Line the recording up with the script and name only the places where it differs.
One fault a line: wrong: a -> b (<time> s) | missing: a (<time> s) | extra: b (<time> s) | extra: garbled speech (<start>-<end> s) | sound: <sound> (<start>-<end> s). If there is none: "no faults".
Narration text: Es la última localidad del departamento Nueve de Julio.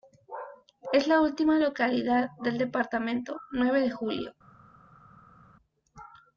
no faults